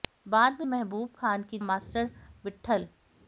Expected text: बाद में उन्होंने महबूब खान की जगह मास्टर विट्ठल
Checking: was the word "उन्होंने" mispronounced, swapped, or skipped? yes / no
yes